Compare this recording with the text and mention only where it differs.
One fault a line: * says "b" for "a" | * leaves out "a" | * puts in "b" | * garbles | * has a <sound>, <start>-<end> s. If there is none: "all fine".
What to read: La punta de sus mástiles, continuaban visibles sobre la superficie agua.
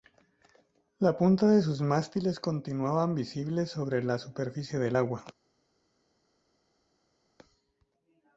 * puts in "del"